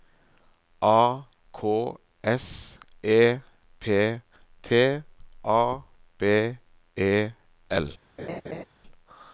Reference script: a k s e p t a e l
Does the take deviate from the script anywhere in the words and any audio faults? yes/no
yes